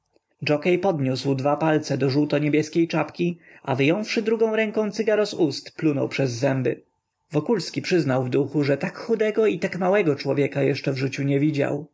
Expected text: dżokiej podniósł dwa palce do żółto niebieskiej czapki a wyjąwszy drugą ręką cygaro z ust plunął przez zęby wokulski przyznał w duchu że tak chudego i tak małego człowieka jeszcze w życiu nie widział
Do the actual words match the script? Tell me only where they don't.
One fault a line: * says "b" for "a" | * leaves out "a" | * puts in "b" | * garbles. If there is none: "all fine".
all fine